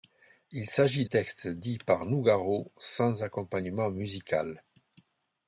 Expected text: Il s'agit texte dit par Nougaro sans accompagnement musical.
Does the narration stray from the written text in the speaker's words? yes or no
no